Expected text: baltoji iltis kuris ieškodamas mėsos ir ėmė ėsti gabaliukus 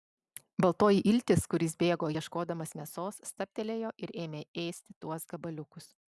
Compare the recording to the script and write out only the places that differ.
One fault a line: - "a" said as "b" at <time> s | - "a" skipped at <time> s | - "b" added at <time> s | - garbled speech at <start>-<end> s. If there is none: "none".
- "bėgo" added at 1.8 s
- "stabtelėjo" added at 3.3 s
- "tuos" added at 5.1 s